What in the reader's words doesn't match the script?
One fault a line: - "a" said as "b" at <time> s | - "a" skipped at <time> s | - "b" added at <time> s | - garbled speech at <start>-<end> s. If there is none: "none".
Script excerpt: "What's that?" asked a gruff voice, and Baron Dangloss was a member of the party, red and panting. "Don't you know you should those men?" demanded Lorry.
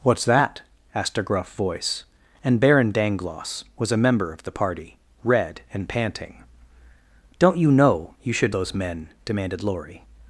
none